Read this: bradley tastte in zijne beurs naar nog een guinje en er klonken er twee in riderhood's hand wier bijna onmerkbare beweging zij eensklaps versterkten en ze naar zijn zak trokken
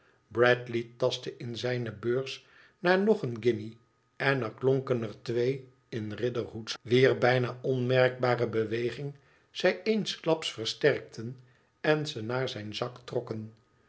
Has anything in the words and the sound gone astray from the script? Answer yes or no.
yes